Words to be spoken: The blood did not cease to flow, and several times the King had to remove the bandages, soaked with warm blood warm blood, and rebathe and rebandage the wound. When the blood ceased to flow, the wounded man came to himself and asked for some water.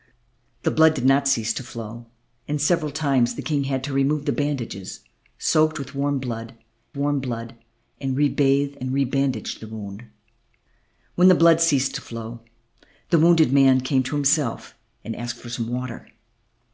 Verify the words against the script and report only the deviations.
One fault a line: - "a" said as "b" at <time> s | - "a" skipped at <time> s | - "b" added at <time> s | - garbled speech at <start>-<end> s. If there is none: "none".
none